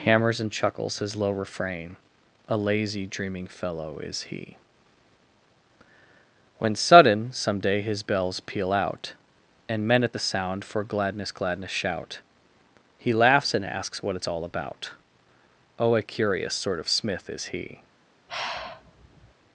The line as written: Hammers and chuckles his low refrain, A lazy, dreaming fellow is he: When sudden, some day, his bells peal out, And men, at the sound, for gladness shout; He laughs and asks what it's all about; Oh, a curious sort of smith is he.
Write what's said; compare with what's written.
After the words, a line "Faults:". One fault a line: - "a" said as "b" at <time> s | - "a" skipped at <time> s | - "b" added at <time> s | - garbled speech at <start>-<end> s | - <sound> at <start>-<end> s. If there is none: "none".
Hammers and chuckles his low refrain, A lazy, dreaming fellow is he: When sudden, some day, his bells peal out, And men, at the sound, for gladness gladness shout; He laughs and asks what it's all about; Oh, a curious sort of smith is he.
Faults:
- "gladness" added at 11.3 s
- sigh at 18.3-19.3 s